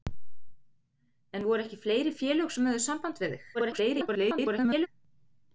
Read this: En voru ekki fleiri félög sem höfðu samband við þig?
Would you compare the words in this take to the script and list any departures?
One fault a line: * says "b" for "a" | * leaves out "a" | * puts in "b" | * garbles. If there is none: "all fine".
* garbles